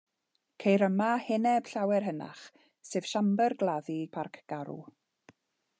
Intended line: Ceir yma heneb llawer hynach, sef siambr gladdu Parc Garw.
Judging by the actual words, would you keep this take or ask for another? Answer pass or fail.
pass